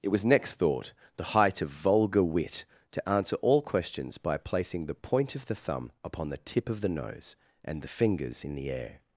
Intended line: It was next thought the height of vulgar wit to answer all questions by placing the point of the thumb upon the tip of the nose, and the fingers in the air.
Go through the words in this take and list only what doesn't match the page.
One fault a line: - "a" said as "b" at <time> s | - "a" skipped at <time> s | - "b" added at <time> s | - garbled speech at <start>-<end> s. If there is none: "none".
none